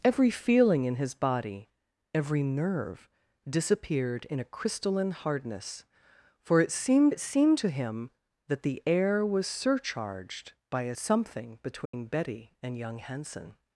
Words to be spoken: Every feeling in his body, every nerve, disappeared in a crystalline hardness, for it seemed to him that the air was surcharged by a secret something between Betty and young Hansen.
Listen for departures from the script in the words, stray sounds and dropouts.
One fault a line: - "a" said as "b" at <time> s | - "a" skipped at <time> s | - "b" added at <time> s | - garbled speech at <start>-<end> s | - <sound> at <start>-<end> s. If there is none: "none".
- "it seemed" added at 7.1 s
- "secret" skipped at 10.9 s
- dropout at 11.9-11.9 s